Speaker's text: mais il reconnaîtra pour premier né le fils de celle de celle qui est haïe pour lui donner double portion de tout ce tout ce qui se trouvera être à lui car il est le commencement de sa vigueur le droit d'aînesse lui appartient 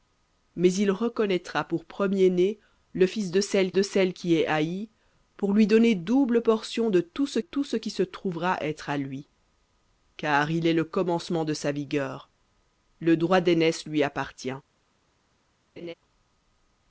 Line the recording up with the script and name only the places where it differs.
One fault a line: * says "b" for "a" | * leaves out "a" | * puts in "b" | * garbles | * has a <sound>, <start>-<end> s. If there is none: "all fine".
* has a laugh, 15.8-15.9 s